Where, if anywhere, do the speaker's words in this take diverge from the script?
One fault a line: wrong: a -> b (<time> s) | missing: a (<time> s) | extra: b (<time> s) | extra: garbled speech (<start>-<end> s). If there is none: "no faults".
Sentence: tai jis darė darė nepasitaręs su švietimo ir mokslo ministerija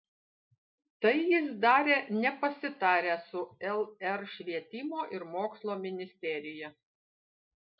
missing: darė (2.0 s)
extra: lr (3.8 s)